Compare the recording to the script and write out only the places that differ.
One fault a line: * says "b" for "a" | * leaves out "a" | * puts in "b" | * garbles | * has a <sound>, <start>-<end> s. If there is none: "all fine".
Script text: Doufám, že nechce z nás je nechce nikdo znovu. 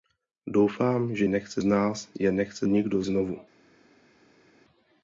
all fine